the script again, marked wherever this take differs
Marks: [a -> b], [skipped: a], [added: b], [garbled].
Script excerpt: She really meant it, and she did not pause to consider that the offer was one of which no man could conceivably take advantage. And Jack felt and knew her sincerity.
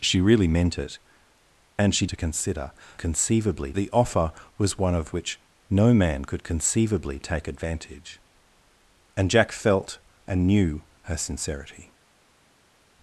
She really meant it, and she [skipped: did not pause] to consider [that -> conceivably] the offer was one of which no man could conceivably take advantage. And Jack felt and knew her sincerity.